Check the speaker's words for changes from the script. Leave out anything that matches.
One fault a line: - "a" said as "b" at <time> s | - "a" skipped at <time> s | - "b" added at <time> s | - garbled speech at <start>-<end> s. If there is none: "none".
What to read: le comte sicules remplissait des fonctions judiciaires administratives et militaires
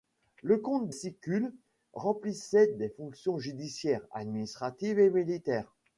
none